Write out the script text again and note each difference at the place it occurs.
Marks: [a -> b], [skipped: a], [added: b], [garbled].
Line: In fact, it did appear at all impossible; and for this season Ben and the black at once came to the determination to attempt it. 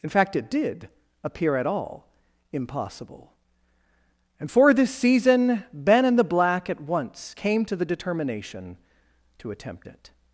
In fact, it did appear at all impossible; and for this season Ben and the black at once came to the determination to attempt it.